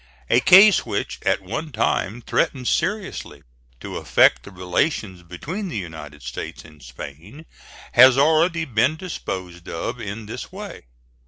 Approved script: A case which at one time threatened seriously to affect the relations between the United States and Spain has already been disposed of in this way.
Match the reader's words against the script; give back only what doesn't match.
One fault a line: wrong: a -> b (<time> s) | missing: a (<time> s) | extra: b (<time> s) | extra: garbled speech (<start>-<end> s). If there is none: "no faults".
no faults